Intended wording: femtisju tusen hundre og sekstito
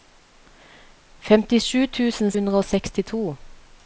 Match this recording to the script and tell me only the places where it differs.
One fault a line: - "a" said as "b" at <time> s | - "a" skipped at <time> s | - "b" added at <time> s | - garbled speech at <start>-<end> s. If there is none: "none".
none